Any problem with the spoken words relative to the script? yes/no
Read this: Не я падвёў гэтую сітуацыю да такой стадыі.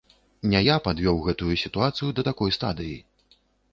no